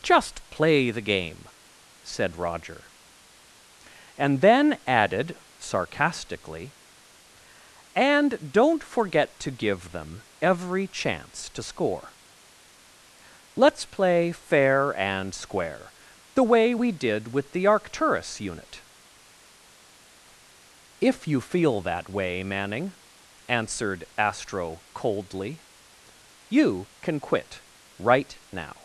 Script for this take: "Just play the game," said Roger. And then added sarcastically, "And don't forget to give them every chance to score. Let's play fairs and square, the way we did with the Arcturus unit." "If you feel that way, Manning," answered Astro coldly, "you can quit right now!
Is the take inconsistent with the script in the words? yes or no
yes